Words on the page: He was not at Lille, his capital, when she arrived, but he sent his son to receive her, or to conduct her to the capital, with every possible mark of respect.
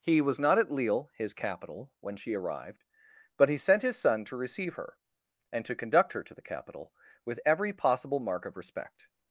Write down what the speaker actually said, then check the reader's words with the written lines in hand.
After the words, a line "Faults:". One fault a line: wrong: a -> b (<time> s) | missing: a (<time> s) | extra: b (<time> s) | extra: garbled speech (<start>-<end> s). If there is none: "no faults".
He was not at Lille, his capital, when she arrived, but he sent his son to receive her, and to conduct her to the capital, with every possible mark of respect.
Faults:
wrong: or -> and (5.5 s)